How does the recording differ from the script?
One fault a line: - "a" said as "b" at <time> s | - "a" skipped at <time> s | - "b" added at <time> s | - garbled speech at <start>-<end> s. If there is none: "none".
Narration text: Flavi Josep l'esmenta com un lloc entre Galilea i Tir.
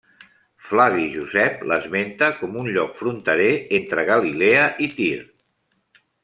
- "fronterer" added at 3.0 s